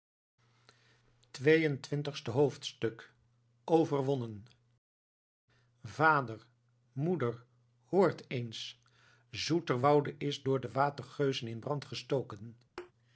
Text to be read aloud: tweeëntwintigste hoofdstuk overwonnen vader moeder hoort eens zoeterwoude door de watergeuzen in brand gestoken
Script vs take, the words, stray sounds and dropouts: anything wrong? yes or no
yes